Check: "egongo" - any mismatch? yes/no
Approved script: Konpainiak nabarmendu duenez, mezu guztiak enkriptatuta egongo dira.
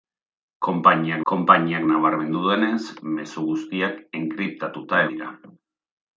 yes